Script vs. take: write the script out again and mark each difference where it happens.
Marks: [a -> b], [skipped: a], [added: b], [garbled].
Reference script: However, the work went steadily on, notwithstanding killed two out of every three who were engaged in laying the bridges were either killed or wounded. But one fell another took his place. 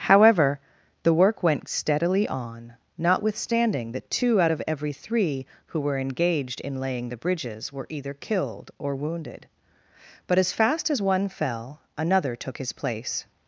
However, the work went steadily on, notwithstanding [killed -> that] two out of every three who were engaged in laying the bridges were either killed or wounded. But [added: as fast as] one fell another took his place.